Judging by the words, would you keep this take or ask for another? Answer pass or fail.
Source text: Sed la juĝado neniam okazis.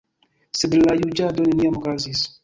pass